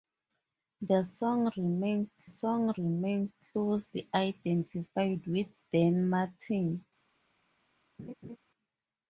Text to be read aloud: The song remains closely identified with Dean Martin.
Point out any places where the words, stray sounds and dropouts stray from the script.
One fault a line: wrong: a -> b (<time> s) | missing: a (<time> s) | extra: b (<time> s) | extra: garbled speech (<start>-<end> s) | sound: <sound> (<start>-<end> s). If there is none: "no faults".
extra: song remains (2.2 s)
sound: laugh (8.0-8.4 s)